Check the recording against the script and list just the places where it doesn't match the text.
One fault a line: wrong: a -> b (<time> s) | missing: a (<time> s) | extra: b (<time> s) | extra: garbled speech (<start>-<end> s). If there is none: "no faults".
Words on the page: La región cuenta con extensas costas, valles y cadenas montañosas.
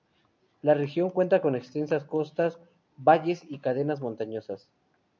no faults